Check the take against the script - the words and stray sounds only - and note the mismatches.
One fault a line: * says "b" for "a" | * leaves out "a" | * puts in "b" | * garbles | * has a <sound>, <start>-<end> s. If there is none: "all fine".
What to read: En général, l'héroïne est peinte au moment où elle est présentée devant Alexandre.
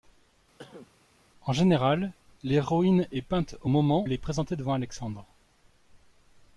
* has a cough, 0.6-0.9 s
* leaves out "où"